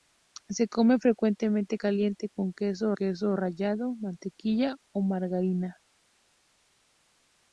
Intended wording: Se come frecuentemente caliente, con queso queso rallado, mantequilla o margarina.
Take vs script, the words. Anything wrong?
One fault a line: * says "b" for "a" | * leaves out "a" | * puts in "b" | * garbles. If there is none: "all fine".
all fine